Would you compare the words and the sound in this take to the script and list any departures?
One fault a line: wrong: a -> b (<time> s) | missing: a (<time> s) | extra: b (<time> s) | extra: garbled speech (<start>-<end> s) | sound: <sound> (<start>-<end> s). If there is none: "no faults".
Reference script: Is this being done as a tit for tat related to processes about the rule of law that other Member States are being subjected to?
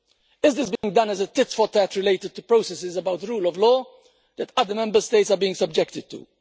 sound: dropout (0.8-0.8 s)